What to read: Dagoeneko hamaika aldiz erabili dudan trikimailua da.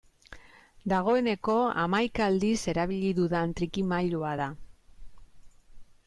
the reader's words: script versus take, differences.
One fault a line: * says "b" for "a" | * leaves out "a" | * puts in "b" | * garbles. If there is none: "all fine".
all fine